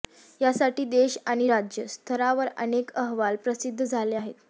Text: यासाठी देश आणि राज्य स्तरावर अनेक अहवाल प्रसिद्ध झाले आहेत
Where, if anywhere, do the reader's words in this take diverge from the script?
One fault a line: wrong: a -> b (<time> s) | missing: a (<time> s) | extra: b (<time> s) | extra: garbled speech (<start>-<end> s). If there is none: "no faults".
no faults